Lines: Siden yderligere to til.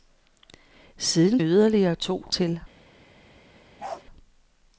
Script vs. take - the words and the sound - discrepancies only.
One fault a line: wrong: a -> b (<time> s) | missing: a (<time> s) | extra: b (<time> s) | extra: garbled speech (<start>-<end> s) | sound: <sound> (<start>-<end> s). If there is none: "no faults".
sound: bark (3.8-4.0 s)